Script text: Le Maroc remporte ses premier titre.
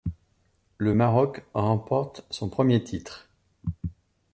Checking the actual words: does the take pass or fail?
fail